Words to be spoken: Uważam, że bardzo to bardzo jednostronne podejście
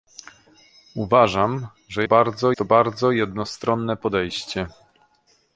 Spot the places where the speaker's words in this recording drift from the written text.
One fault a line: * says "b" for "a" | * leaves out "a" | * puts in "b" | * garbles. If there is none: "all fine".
all fine